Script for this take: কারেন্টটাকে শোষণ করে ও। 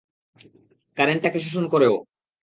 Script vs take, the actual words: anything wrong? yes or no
no